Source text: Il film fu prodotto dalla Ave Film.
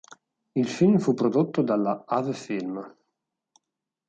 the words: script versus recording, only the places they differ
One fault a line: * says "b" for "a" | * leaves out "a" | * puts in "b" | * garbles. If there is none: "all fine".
all fine